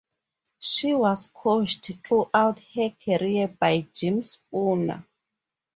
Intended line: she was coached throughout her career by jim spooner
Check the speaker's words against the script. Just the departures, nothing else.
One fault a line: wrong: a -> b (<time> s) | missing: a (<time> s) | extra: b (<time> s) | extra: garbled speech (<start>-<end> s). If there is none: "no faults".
no faults